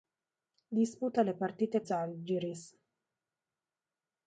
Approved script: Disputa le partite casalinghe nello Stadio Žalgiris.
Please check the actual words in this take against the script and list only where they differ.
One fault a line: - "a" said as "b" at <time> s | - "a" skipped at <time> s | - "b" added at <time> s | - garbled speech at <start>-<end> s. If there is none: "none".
- "casalinghe nello Stadio" skipped at 1.8 s